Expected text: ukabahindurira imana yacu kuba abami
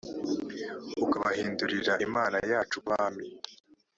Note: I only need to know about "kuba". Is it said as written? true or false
false